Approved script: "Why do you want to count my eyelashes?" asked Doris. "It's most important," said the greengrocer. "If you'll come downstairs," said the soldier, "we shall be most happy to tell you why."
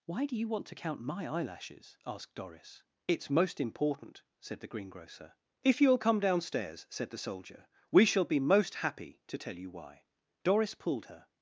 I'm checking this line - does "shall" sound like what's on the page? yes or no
yes